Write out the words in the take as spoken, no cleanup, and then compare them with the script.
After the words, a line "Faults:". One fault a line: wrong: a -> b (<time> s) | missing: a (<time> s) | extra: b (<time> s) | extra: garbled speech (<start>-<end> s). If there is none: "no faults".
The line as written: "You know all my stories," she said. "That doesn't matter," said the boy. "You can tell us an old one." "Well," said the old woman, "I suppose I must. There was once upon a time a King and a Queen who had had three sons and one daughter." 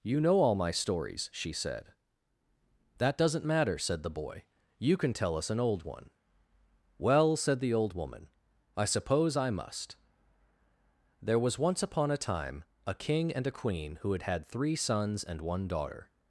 "You know all my stories," she said. "That doesn't matter," said the boy. "You can tell us an old one." "Well," said the old woman, "I suppose I must. There was once upon a time a King and a Queen who had had three sons and one daughter."
Faults:
no faults